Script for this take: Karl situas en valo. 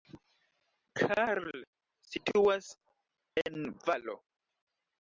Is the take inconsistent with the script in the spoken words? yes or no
no